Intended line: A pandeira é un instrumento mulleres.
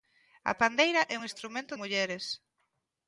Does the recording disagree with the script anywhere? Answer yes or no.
no